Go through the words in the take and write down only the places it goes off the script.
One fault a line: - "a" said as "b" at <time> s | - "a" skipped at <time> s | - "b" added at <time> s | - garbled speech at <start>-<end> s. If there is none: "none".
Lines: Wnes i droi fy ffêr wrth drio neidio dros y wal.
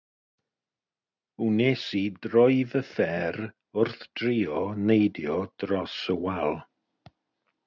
none